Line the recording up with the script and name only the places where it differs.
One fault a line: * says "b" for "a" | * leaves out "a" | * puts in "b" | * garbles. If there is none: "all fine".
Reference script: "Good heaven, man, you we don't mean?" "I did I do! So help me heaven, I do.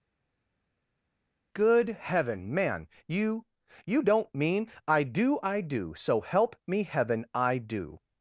* says "you" for "we"
* says "do" for "did"